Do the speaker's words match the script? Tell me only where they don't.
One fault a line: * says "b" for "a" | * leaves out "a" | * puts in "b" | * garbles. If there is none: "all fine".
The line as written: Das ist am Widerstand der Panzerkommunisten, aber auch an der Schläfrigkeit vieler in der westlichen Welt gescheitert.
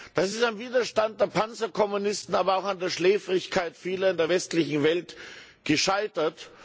all fine